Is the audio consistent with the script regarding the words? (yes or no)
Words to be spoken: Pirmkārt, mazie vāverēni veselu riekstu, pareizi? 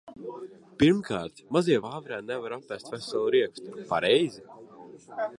no